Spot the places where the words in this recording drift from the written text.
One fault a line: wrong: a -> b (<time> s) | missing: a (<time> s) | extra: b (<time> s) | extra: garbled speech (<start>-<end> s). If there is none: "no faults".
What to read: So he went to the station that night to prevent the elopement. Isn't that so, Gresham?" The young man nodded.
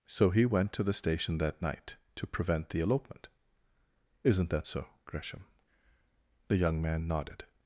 no faults